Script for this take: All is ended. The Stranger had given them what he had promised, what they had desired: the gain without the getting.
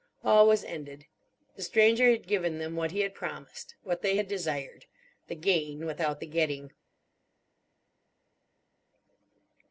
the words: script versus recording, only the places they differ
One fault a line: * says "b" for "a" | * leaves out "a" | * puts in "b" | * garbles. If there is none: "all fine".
* says "was" for "is"